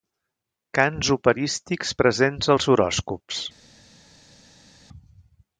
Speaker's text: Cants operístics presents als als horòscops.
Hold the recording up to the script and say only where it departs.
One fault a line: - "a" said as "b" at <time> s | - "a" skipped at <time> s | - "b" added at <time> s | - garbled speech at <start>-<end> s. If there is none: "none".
- "als" skipped at 2.7 s